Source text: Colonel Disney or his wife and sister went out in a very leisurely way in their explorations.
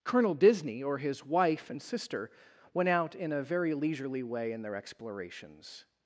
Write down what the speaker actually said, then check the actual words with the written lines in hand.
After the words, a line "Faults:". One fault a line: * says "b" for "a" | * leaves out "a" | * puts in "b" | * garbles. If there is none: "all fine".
Colonel Disney or his wife and sister went out in a very leisurely way in their explorations.
Faults:
all fine